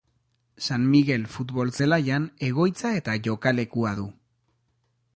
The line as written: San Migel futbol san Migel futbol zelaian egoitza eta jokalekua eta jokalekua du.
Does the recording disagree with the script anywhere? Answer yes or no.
yes